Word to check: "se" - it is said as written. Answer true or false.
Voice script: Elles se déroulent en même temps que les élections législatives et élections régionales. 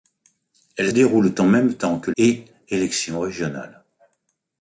false